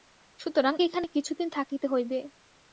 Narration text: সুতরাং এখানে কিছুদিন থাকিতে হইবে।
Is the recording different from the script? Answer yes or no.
no